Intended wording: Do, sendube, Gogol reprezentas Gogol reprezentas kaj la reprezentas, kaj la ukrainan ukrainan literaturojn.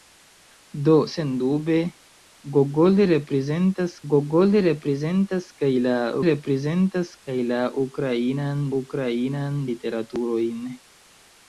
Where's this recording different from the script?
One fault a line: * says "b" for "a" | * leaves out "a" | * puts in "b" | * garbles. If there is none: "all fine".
all fine